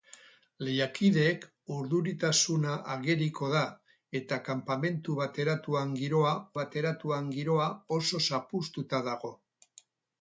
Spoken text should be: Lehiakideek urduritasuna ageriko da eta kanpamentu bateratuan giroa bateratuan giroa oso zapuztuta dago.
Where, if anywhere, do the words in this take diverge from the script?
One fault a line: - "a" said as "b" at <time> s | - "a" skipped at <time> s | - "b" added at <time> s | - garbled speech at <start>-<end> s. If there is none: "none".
none